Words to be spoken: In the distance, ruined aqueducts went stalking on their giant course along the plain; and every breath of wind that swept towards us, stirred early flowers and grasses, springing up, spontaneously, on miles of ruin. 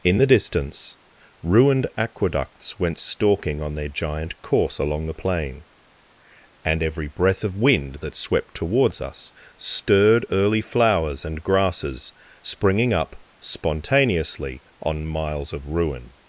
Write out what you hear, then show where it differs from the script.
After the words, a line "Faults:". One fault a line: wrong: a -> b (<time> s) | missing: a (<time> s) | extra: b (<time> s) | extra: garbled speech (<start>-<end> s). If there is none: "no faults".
In the distance, ruined aqueducts went stalking on their giant course along the plain; and every breath of wind that swept towards us, stirred early flowers and grasses, springing up, spontaneously, on miles of ruin.
Faults:
no faults